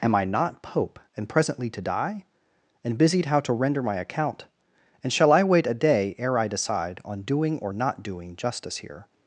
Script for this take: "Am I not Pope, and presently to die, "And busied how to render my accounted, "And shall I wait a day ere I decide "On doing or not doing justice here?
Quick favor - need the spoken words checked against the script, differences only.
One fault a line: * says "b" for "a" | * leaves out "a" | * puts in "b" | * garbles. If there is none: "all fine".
* says "account" for "accounted"